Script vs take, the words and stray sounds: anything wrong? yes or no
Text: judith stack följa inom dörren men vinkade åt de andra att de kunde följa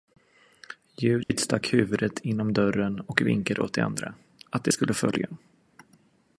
yes